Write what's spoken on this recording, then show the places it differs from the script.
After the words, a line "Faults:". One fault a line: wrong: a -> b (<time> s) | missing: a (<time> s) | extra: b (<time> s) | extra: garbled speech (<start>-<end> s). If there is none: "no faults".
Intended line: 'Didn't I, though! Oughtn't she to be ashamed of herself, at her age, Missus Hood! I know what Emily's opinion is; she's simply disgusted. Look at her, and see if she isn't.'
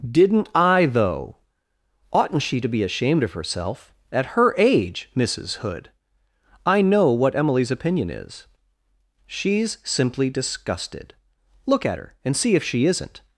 'Didn't I, though! Oughtn't she to be ashamed of herself, at her age, Missus Hood! I know what Emily's opinion is; she's simply disgusted. Look at her, and see if she isn't.'
Faults:
no faults